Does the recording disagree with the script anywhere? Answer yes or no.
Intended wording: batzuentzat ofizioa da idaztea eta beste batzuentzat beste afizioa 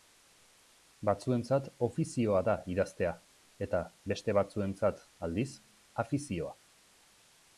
yes